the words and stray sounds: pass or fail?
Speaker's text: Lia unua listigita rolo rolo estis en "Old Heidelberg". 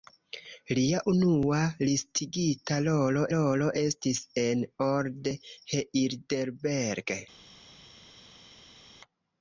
pass